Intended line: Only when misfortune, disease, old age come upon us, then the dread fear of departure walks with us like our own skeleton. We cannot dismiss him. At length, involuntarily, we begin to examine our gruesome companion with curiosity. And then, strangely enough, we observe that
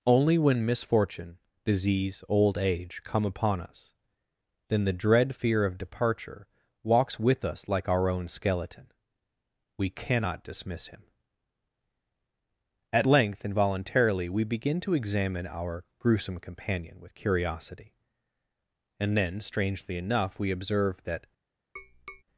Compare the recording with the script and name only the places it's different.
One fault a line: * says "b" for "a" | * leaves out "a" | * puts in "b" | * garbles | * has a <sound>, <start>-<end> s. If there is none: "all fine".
* has a tap, 21.8-22.2 s